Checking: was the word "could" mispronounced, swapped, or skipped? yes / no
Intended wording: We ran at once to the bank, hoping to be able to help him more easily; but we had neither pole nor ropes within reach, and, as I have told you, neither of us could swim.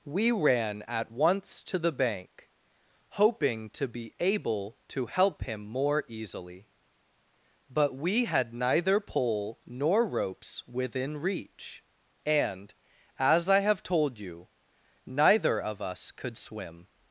no